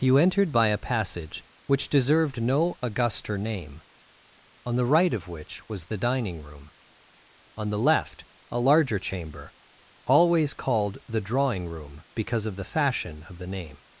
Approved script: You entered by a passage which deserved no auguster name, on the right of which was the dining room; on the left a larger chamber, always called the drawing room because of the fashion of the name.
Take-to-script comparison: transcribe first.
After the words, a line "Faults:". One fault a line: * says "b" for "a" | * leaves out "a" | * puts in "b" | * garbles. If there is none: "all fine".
You entered by a passage which deserved no auguster name, on the right of which was the dining room; on the left a larger chamber, always called the drawing room because of the fashion of the name.
Faults:
all fine